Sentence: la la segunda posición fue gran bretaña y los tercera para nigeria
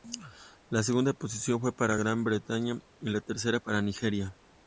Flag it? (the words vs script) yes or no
yes